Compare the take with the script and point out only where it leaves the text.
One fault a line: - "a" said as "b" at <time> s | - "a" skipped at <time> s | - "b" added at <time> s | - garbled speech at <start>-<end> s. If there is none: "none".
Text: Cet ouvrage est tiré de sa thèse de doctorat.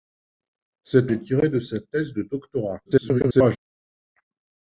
- "ouvrage" skipped at 1.1 s
- garbled speech at 2.8-3.6 s